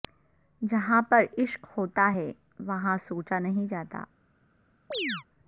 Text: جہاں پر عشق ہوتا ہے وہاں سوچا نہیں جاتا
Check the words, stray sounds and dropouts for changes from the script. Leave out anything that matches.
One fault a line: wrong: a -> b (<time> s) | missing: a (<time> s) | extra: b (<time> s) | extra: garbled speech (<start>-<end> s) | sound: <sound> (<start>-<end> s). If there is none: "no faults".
sound: chirp (4.9-5.2 s)